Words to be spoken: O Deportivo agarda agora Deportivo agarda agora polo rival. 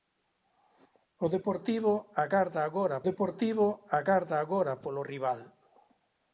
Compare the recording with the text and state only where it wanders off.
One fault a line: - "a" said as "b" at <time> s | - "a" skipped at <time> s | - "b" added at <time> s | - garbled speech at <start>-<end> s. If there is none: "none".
none